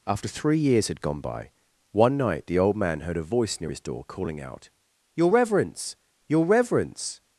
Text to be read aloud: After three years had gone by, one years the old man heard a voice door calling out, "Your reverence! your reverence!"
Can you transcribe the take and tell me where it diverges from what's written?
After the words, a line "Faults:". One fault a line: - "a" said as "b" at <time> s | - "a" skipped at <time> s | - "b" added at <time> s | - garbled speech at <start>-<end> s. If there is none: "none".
After three years had gone by, one night the old man heard a voice near his door calling out, "Your reverence! your reverence!"
Faults:
- "years" said as "night" at 2.2 s
- "near his" added at 3.6 s